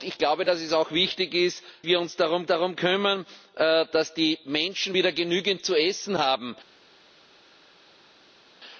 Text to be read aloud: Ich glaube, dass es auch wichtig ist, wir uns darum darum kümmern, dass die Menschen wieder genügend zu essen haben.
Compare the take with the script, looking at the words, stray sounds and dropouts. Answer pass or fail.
pass